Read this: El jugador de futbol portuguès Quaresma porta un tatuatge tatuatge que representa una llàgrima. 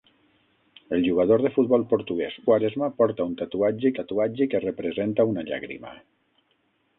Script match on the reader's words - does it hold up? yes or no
yes